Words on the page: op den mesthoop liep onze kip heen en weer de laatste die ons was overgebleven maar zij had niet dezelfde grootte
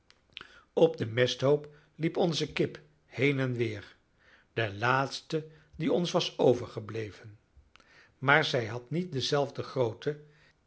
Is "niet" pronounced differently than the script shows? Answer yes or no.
no